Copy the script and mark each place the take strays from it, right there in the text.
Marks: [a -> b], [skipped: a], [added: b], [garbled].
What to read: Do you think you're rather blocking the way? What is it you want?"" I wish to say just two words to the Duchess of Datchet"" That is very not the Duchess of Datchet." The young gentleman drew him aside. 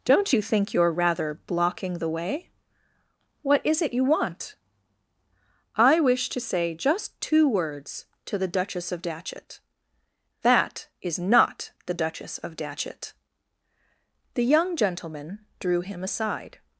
[Do -> Don't] you think you're rather blocking the way? What is it you want?"" I wish to say just two words to the Duchess of Datchet"" That is [skipped: very] not the Duchess of Datchet." The young gentleman drew him aside.